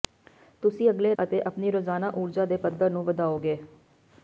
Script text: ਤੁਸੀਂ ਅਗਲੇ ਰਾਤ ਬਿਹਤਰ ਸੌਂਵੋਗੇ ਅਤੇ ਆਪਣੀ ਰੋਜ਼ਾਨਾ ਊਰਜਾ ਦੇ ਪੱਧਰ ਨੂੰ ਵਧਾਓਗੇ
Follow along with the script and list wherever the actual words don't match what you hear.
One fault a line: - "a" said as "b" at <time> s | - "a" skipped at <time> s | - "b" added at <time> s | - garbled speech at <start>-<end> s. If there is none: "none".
- "ਰਾਤ ਬਿਹਤਰ ਸੌਂਵੋਗੇ" skipped at 1.1 s